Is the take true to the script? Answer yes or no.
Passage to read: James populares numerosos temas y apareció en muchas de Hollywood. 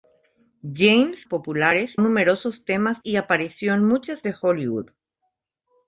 yes